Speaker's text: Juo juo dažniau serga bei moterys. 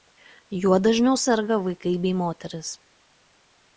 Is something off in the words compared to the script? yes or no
yes